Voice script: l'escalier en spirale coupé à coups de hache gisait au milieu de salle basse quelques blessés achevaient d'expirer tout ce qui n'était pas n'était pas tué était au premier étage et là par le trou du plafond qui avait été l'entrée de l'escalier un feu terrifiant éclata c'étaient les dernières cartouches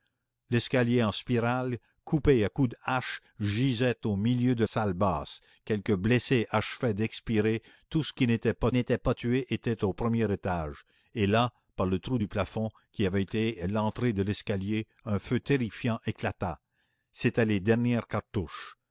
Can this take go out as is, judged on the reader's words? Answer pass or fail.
pass